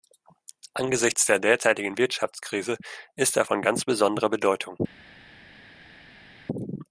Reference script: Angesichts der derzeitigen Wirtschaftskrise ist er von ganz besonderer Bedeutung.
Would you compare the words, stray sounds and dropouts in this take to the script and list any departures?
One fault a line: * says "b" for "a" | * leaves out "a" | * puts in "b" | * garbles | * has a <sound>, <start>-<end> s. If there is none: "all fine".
all fine